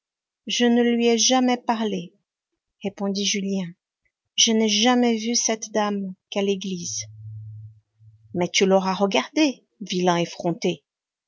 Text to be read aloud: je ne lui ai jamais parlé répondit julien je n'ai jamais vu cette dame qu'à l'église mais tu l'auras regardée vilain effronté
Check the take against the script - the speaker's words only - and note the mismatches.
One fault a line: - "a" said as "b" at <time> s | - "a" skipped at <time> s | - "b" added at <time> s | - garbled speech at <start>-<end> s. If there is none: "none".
none